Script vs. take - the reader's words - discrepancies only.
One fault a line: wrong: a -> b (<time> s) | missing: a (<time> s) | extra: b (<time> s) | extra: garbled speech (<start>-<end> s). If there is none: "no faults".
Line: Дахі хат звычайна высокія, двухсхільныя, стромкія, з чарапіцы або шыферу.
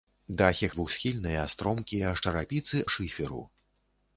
missing: хат звычайна высокія (0.7 s)
missing: або (2.8 s)